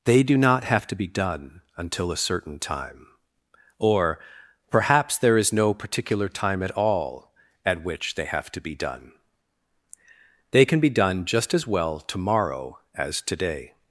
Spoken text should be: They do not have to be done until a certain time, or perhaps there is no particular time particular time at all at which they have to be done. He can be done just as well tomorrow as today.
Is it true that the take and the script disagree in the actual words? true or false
true